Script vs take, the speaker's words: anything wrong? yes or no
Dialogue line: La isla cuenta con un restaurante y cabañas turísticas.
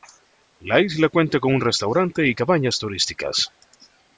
no